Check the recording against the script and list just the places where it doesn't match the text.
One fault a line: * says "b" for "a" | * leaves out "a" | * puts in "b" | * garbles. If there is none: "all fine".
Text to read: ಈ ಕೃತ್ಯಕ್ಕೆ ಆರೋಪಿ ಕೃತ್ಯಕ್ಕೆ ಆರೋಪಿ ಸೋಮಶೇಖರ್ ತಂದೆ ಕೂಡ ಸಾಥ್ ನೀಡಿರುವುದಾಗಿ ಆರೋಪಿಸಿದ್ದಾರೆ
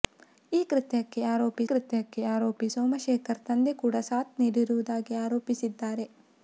all fine